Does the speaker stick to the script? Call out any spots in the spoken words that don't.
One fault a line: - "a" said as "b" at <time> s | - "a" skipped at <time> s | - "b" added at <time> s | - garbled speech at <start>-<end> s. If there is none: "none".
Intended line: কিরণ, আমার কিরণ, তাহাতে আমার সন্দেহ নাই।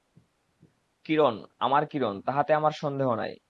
none